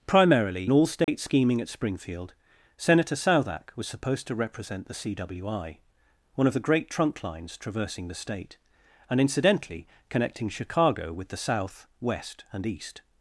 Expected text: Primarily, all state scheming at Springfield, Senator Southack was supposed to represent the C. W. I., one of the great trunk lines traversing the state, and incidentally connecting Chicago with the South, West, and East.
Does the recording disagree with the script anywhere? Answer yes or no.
no